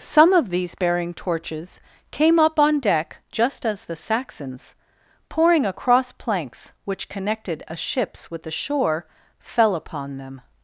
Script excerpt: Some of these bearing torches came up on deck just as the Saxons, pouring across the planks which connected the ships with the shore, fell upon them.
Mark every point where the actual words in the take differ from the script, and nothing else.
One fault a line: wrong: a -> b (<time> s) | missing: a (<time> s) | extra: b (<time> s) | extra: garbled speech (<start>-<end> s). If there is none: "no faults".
missing: the (6.1 s)
wrong: the -> a (7.7 s)